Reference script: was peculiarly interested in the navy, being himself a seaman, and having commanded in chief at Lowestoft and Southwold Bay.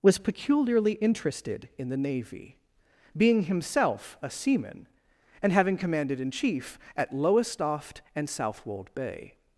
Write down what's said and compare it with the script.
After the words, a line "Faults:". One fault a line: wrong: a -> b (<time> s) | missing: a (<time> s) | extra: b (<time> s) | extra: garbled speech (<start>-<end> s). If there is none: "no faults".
was peculiarly interested in the navy, being himself a seaman, and having commanded in chief at Lowestoft and Southwold Bay.
Faults:
no faults